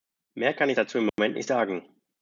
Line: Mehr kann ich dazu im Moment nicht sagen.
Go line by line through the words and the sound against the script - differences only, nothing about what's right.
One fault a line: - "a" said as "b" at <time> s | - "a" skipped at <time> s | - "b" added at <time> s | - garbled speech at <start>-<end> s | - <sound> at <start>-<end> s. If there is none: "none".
- dropout at 1.1-1.2 s